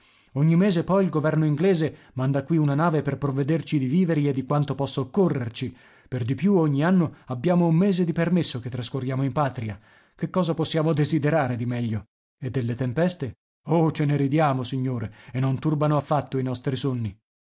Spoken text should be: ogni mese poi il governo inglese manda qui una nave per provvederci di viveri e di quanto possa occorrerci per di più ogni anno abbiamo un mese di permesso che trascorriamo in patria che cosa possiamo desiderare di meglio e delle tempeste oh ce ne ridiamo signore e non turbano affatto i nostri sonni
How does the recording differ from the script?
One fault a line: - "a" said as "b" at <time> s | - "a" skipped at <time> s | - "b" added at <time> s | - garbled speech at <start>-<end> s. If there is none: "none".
none